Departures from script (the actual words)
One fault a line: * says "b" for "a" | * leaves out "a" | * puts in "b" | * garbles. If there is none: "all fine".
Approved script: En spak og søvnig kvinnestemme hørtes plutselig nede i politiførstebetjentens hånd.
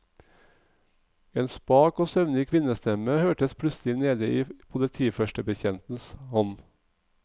all fine